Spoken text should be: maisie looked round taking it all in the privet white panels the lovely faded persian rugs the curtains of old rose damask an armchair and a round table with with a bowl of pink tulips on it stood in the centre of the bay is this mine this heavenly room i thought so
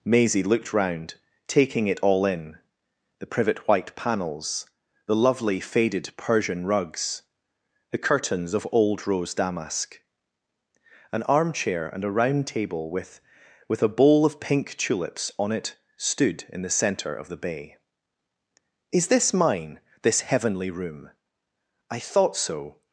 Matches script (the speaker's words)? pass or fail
pass